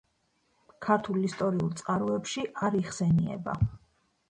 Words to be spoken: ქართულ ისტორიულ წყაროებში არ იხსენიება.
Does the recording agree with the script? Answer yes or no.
yes